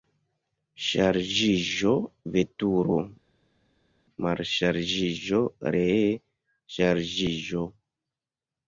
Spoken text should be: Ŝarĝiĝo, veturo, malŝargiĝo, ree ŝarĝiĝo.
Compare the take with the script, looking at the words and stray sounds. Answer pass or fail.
pass